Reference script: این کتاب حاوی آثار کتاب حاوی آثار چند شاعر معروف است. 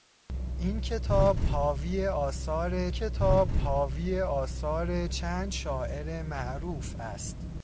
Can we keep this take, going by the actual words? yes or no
yes